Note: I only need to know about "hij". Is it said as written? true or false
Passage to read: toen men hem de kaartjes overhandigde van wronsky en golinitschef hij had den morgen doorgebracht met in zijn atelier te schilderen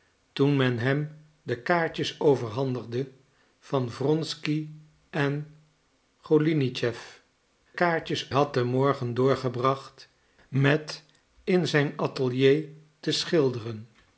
false